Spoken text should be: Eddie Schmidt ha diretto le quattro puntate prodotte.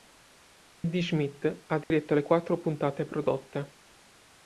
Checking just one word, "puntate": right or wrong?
right